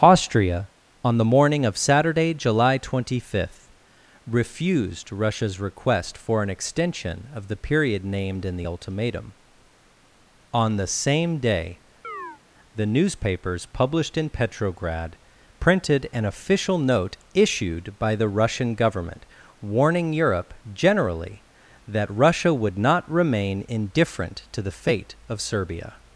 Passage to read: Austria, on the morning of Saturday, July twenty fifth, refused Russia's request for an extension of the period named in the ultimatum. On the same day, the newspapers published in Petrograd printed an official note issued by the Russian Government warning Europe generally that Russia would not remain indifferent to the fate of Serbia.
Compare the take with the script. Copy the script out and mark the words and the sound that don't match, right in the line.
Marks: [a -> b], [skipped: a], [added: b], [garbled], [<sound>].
Austria, on the morning of Saturday, July twenty fifth, refused Russia's request for an extension of the period named in the ultimatum. On the same day, [chirp] the newspapers published in Petrograd printed an official note issued by the Russian Government warning Europe generally that Russia would not remain indifferent to the fate of Serbia.